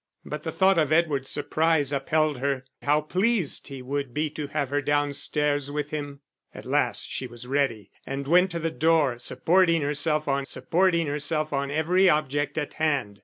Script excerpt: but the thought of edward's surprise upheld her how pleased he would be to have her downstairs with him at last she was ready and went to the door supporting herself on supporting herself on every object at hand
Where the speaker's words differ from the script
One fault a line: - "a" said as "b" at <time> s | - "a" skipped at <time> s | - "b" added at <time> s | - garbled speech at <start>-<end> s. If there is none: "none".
none